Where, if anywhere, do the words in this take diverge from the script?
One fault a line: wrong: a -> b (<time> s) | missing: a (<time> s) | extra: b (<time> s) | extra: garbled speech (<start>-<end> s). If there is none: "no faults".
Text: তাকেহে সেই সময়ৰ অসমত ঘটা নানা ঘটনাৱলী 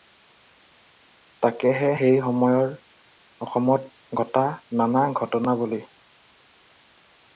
no faults